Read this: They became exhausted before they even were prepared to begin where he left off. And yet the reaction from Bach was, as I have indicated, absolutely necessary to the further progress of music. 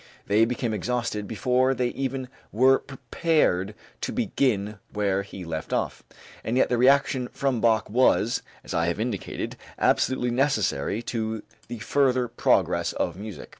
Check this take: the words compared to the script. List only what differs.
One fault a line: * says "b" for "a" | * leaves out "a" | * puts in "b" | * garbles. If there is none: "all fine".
all fine